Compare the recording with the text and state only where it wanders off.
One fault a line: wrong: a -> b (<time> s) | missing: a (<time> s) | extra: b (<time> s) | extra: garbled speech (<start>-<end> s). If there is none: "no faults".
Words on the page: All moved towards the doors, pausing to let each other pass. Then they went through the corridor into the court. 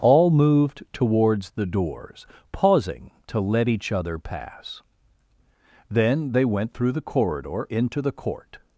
no faults